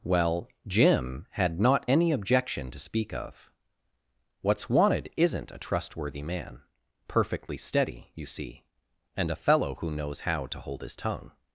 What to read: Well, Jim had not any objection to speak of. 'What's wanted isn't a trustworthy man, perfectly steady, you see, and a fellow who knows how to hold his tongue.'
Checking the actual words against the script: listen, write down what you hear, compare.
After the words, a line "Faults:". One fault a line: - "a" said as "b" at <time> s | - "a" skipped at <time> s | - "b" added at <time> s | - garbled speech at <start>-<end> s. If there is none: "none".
Well, Jim had not any objection to speak of. 'What's wanted isn't a trustworthy man, perfectly steady, you see, and a fellow who knows how to hold his tongue.'
Faults:
none